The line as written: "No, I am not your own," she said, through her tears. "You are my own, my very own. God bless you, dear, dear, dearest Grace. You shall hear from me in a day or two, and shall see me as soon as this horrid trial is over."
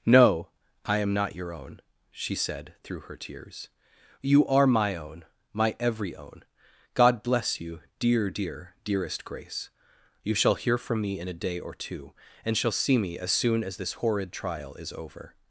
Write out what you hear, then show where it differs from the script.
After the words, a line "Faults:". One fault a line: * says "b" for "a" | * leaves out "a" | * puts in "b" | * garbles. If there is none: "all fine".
"No, I am not your own," she said, through her tears. "You are my own, my every own. God bless you, dear, dear, dearest Grace. You shall hear from me in a day or two, and shall see me as soon as this horrid trial is over."
Faults:
* says "every" for "very"